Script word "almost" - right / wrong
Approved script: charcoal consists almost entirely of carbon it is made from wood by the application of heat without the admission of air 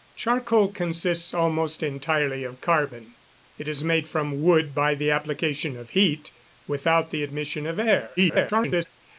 right